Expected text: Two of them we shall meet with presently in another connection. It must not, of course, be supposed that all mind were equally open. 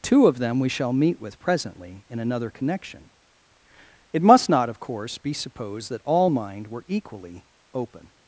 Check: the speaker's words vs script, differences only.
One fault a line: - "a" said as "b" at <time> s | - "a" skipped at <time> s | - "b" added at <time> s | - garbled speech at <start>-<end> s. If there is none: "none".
none